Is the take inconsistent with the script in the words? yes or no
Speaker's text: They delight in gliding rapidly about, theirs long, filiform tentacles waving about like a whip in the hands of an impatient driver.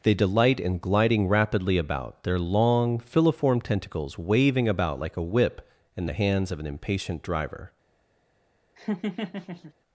yes